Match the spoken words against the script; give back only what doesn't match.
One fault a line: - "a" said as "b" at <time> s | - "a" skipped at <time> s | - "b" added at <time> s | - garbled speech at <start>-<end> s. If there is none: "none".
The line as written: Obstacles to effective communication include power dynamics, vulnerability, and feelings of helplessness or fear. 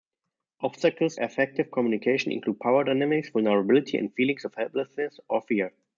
- "to" skipped at 1.2 s